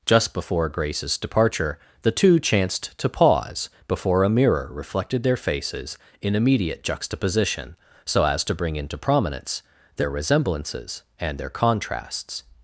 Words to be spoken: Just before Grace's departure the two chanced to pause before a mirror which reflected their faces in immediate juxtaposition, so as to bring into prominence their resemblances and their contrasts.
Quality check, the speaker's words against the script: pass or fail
fail